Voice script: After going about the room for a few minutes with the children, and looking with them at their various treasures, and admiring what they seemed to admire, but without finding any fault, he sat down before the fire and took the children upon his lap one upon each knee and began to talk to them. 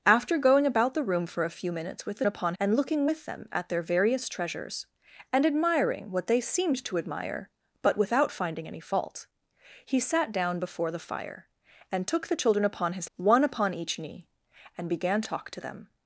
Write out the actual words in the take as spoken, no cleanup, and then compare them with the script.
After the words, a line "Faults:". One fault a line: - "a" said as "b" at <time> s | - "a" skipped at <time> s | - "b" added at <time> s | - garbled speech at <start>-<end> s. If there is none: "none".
After going about the room for a few minutes with the upon, and looking with them at their various treasures, and admiring what they seemed to admire, but without finding any fault, he sat down before the fire and took the children upon his one upon each knee and began talk to them.
Faults:
- "children" said as "upon" at 2.2 s
- "lap" skipped at 13.1 s
- "to" skipped at 15.2 s